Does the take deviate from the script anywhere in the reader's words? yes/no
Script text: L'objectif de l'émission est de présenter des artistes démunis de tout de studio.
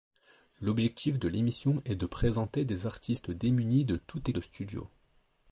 no